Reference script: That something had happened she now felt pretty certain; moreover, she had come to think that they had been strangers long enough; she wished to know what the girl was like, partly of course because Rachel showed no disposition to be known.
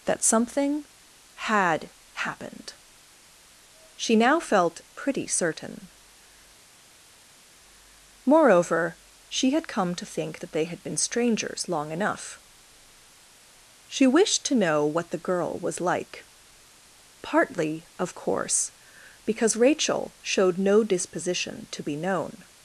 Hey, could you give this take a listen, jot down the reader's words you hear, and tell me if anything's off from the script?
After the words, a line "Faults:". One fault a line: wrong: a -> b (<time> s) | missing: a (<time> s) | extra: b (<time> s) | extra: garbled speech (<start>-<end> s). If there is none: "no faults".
That something had happened she now felt pretty certain; moreover, she had come to think that they had been strangers long enough; she wished to know what the girl was like, partly of course because Rachel showed no disposition to be known.
Faults:
no faults